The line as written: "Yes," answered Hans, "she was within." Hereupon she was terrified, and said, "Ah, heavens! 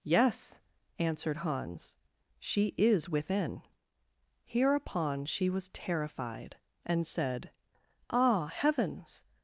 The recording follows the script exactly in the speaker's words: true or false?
false